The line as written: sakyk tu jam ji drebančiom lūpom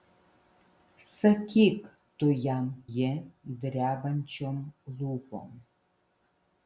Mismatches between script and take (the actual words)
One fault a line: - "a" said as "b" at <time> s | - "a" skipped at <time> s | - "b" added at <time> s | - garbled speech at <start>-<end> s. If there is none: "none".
none